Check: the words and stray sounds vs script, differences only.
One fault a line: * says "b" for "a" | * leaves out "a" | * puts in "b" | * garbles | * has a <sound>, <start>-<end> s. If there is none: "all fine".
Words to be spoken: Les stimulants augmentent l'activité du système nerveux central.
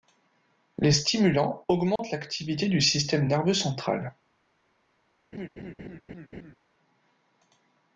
* has a dropout, 2.0-2.0 s
* has a laugh, 5.3-6.6 s